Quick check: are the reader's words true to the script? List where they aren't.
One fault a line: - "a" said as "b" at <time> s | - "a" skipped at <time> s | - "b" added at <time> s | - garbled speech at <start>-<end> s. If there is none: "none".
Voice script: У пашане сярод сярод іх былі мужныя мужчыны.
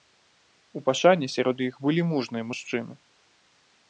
- "сярод" skipped at 1.6 s